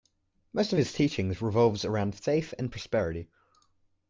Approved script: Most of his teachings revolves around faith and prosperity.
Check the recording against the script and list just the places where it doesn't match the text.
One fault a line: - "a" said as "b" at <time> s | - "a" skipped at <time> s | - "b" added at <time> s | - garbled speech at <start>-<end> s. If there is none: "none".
none